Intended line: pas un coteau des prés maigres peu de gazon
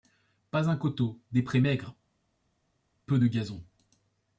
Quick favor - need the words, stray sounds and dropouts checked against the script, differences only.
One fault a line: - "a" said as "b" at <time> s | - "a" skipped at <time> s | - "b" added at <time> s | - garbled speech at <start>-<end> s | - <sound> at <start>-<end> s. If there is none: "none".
none